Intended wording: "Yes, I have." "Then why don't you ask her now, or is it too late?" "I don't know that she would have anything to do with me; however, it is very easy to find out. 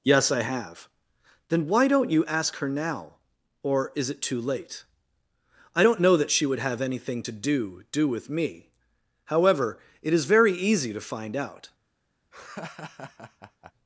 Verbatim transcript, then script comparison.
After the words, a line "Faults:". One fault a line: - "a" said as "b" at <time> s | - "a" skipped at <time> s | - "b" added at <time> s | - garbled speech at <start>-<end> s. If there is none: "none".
"Yes, I have." "Then why don't you ask her now, or is it too late?" "I don't know that she would have anything to do do with me; however, it is very easy to find out.
Faults:
- "do" added at 7.9 s